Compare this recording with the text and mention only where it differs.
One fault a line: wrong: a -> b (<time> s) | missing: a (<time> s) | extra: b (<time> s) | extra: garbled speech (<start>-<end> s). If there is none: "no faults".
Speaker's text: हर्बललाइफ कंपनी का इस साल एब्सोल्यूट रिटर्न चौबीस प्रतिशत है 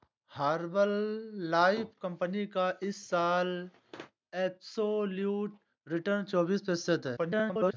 extra: garbled speech (7.2-7.7 s)